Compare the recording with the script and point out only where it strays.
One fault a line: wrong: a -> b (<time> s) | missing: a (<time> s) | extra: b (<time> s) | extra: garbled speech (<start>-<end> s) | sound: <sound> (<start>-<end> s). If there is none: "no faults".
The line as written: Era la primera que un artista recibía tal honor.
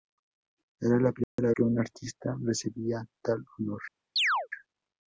sound: dropout (1.2-1.4 s)
sound: chirp (4.2-4.5 s)